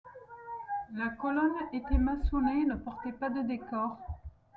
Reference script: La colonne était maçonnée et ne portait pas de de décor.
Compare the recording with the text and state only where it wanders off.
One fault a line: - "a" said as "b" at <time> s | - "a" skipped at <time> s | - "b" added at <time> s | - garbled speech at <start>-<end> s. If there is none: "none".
- "de" skipped at 3.4 s